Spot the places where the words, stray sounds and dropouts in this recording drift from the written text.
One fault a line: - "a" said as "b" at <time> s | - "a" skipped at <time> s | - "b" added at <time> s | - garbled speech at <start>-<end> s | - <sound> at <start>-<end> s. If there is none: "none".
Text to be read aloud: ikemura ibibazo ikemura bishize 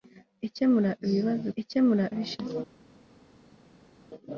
none